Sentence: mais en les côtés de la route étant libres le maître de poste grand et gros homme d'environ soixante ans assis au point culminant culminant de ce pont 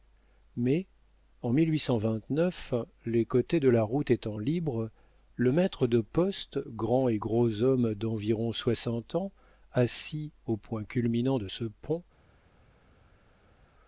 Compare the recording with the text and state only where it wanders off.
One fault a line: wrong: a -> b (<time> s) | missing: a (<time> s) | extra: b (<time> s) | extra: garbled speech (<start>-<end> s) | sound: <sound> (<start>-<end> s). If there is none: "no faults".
missing: culminant (11.4 s)